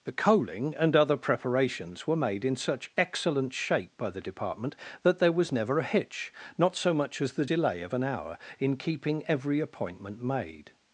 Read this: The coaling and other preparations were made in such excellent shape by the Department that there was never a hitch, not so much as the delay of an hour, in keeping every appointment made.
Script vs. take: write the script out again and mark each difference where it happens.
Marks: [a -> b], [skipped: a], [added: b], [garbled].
The coaling and other preparations were made in such excellent shape by the Department that there was never a hitch, not so much as the delay of an hour, in keeping every appointment made.